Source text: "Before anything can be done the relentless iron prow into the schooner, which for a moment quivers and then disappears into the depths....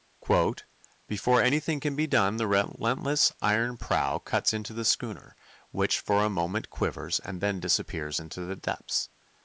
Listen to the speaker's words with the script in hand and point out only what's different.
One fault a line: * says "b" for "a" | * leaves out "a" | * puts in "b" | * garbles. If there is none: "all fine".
* puts in "cuts"